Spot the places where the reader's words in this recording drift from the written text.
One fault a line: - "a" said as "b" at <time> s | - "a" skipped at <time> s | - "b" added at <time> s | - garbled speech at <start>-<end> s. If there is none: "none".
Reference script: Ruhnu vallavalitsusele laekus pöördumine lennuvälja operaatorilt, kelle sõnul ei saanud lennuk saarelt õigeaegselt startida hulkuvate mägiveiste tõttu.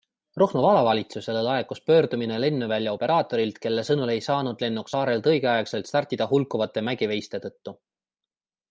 none